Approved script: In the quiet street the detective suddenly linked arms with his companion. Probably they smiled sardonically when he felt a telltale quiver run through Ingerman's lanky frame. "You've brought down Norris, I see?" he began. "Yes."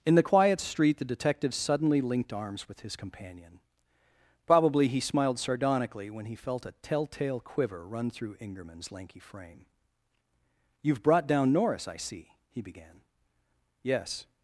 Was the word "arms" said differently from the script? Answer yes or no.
no